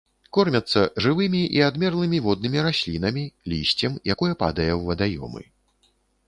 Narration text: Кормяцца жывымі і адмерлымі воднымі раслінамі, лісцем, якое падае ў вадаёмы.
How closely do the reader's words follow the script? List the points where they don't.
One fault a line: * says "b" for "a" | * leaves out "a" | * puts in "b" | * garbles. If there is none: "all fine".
all fine